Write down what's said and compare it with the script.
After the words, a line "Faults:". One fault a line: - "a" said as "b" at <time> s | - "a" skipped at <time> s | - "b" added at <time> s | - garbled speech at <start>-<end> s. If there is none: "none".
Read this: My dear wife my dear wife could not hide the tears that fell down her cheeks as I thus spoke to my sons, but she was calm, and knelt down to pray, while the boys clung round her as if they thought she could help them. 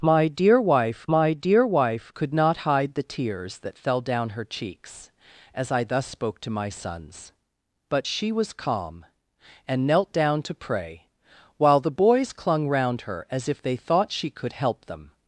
My dear wife my dear wife could not hide the tears that fell down her cheeks as I thus spoke to my sons, but she was calm, and knelt down to pray, while the boys clung round her as if they thought she could help them.
Faults:
none